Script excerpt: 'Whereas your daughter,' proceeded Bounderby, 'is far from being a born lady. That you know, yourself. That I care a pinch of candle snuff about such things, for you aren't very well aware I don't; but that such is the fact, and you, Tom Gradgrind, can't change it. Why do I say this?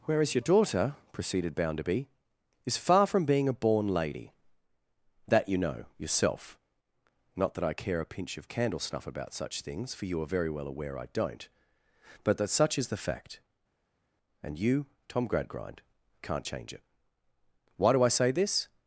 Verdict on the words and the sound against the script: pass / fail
fail